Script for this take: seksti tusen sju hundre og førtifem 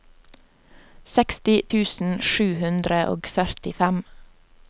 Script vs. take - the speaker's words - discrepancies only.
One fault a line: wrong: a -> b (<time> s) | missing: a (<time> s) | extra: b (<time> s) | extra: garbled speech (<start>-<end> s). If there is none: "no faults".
no faults